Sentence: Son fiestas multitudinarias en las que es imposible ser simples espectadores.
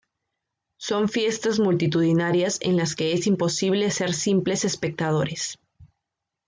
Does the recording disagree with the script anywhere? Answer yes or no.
no